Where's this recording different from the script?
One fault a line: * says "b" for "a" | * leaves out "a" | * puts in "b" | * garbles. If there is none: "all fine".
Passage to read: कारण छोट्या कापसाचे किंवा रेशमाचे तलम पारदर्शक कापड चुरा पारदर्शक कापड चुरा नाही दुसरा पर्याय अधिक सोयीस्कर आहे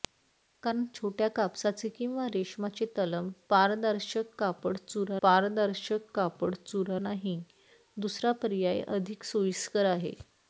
all fine